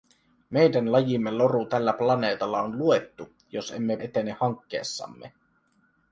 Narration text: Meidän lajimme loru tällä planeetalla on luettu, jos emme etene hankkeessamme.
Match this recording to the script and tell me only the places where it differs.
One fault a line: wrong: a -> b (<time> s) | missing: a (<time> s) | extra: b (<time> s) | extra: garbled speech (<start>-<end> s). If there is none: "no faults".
no faults